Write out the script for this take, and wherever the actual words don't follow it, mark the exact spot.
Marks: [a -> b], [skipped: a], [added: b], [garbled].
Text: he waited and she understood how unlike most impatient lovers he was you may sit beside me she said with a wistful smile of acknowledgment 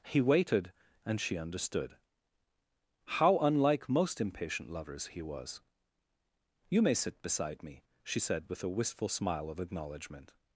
he waited and she understood how unlike most impatient lovers he was you may sit beside me she said with a wistful smile of acknowledgment